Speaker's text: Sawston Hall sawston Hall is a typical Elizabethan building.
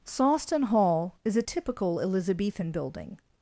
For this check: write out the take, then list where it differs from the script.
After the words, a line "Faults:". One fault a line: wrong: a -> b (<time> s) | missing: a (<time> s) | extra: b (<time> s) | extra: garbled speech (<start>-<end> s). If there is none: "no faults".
Sawston Hall is a typical Elizabethan building.
Faults:
missing: sawston Hall (1.1 s)